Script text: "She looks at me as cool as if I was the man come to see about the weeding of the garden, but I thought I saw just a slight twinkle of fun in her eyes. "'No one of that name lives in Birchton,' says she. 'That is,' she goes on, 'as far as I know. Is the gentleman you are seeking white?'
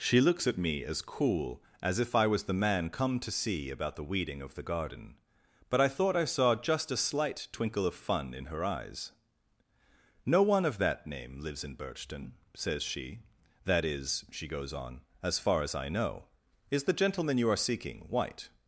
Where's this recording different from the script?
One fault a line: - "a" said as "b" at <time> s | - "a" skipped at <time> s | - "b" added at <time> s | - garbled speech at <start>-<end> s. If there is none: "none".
none